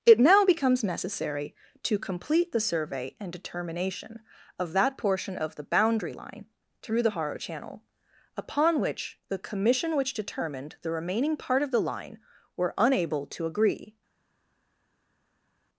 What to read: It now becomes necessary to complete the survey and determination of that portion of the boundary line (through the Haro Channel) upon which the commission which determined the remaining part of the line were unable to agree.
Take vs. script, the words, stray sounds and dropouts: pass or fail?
pass